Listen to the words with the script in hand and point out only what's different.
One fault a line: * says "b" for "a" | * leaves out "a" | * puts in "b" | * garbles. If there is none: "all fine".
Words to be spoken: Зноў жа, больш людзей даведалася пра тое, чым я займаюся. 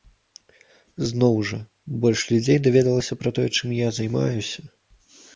all fine